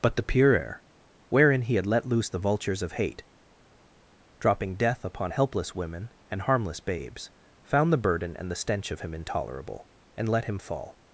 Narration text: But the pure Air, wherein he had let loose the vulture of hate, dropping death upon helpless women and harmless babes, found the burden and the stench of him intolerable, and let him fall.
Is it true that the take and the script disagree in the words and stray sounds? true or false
true